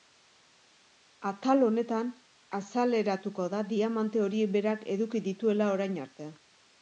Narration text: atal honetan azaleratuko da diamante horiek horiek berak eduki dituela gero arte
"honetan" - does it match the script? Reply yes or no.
yes